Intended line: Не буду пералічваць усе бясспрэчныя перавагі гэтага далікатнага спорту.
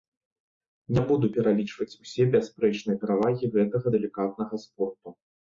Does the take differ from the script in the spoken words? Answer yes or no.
no